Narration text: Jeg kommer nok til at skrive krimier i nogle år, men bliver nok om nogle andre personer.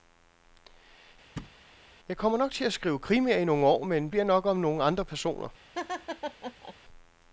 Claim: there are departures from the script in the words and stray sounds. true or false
true